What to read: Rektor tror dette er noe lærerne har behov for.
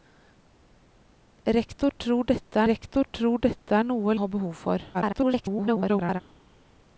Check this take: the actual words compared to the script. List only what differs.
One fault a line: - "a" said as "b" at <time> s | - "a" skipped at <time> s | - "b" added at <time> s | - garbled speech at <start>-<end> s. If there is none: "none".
- "rektor tror dette" added at 2.7 s
- "lærerne" skipped at 4.2 s
- garbled speech at 4.9-6.2 s